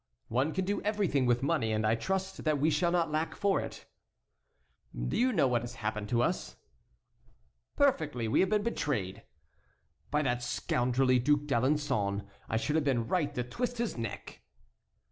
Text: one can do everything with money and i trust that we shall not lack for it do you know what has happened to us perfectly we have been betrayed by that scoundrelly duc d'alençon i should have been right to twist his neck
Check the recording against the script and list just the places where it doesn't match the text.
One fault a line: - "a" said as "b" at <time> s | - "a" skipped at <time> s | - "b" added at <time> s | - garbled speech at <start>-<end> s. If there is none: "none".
none